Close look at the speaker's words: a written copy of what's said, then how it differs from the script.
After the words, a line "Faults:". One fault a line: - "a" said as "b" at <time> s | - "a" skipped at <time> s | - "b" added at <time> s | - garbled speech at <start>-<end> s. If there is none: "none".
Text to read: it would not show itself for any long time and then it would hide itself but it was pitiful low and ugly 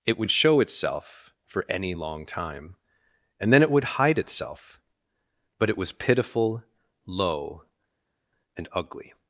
it would show itself for any long time and then it would hide itself but it was pitiful low and ugly
Faults:
- "not" skipped at 0.3 s